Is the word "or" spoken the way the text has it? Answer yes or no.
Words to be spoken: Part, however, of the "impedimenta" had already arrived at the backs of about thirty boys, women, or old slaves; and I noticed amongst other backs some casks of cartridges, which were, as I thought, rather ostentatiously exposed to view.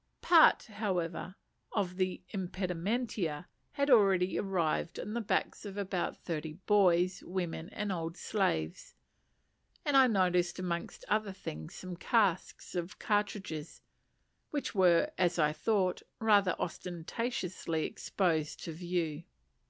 no